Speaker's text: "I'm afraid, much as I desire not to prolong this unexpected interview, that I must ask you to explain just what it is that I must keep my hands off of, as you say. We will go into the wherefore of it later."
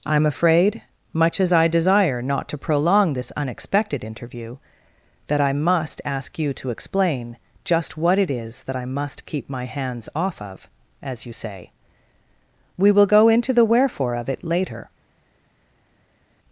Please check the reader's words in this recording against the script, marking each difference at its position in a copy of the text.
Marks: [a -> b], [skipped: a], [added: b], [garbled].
"I'm afraid, much as I desire not to prolong this unexpected interview, that I must ask you to explain just what it is that I must keep my hands off of, as you say. We will go into the wherefore of it later."